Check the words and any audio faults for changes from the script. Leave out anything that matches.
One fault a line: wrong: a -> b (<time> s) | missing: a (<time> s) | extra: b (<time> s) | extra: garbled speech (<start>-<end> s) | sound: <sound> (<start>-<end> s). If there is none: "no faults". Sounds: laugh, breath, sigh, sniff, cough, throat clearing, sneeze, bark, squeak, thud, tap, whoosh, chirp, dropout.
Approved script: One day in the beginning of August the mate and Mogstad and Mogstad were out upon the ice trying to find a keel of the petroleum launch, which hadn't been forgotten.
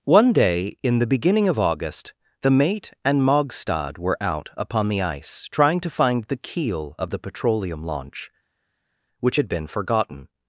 missing: and Mogstad (4.0 s)
wrong: a -> the (6.2 s)
wrong: hadn't -> had (9.3 s)